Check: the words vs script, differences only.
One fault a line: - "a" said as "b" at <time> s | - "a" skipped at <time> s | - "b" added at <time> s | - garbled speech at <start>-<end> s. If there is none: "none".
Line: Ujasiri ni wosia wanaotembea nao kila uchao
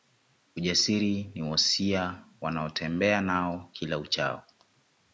none